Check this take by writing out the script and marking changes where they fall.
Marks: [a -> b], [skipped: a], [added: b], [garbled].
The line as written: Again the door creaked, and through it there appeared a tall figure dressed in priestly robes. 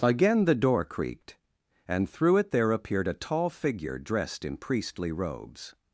Again the door creaked, and through it there appeared a tall figure dressed in priestly robes.